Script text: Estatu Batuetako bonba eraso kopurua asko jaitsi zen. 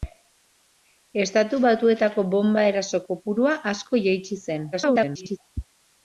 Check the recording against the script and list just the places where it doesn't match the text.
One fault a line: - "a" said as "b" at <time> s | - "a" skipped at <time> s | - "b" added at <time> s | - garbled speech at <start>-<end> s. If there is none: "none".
- garbled speech at 4.7-5.4 s